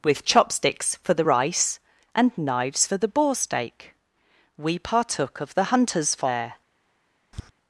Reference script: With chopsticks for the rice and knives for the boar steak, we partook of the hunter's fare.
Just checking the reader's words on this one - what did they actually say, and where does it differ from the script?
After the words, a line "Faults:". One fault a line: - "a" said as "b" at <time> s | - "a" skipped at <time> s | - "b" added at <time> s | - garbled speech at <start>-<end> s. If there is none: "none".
With chopsticks for the rice and knives for the boar steak, we partook of the hunter's fare.
Faults:
none